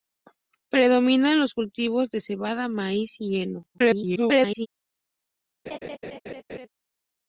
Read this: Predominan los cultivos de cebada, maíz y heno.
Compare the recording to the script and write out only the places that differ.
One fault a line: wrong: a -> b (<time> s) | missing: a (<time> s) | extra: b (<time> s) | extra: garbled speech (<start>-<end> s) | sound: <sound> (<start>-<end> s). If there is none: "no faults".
extra: garbled speech (3.7-4.7 s)
sound: laugh (5.7-6.7 s)